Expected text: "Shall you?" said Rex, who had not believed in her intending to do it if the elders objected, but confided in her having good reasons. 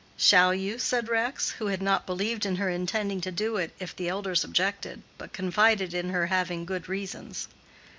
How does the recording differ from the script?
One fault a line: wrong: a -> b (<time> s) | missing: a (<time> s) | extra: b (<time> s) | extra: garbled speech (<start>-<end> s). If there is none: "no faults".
no faults